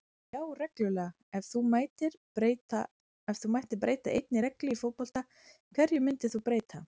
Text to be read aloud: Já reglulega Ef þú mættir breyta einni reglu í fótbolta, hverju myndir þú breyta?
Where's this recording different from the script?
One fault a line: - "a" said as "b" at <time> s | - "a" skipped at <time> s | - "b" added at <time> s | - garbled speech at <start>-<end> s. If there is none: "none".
none